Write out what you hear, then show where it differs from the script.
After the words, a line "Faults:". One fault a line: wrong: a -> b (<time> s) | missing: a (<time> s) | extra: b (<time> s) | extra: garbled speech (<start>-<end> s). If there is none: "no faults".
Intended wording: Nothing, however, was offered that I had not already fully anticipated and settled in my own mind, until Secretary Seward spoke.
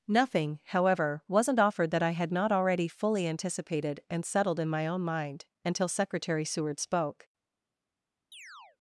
Nothing, however, wasn't offered that I had not already fully anticipated and settled in my own mind, until Secretary Seward spoke.
Faults:
wrong: was -> wasn't (1.3 s)